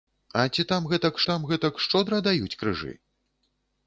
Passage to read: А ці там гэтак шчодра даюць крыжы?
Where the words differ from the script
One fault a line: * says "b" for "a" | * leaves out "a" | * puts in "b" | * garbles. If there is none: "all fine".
* puts in "там гэтак"